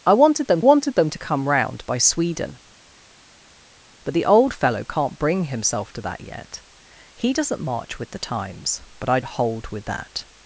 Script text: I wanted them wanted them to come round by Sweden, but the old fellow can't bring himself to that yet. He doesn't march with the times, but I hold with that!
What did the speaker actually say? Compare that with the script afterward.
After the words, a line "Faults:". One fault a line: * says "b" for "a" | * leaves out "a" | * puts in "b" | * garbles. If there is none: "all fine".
I wanted them wanted them to come round by Sweden, but the old fellow can't bring himself to that yet. He doesn't march with the times, but I hold with that!
Faults:
all fine